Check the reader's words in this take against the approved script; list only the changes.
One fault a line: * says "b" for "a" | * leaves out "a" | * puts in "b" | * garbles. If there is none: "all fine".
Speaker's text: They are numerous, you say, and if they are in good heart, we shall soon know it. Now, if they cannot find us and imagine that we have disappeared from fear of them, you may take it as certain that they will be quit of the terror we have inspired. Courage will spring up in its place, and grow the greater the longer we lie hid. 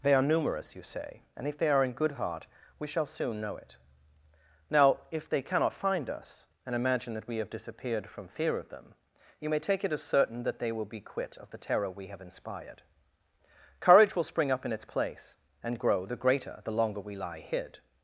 all fine